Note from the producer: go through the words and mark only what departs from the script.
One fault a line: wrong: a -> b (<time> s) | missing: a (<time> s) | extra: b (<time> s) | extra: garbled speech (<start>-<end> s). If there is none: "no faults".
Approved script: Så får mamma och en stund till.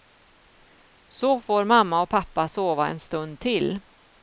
extra: pappa sova (2.1 s)